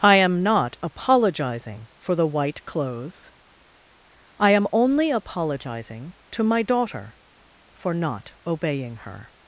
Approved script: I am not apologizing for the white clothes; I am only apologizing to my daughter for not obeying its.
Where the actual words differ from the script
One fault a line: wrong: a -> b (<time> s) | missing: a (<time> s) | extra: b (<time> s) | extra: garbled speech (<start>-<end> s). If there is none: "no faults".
wrong: its -> her (9.0 s)